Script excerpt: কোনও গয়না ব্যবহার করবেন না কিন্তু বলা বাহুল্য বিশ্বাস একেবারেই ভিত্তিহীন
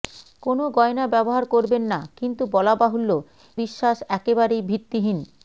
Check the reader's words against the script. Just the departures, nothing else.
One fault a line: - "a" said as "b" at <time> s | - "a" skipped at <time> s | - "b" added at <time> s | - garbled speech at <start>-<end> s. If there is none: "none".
none